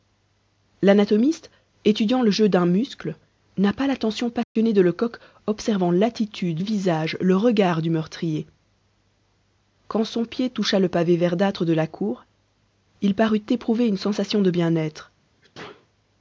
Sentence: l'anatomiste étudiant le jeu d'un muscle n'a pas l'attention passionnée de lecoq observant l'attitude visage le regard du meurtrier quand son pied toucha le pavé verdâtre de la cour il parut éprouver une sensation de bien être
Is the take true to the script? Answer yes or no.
yes